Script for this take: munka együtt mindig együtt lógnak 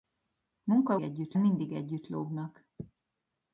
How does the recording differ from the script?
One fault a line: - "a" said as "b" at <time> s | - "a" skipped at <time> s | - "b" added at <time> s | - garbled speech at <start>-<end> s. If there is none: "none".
none